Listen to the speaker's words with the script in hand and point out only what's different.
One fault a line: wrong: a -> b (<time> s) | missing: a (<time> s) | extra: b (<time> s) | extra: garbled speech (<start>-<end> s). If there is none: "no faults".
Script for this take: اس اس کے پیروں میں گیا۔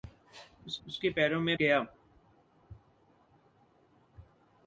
no faults